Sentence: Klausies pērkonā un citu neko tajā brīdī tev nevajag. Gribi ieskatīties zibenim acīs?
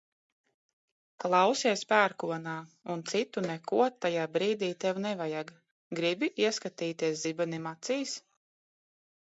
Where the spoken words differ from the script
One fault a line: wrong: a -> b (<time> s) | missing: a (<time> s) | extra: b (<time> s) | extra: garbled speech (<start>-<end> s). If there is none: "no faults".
no faults